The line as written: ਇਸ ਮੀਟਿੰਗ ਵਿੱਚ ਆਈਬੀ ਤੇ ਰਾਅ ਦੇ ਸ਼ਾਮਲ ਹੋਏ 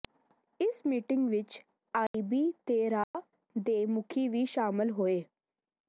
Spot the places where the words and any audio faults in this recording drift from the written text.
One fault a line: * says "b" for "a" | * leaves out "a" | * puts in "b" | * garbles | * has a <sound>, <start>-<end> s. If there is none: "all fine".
* has a dropout, 2.1-2.1 s
* has a dropout, 3.0-3.1 s
* puts in "ਮੁਖੀ ਵੀ"